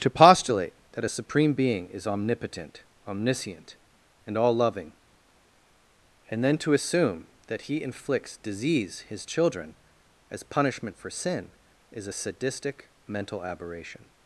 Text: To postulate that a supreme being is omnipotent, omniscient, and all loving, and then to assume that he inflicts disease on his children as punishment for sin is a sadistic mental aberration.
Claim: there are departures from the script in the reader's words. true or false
true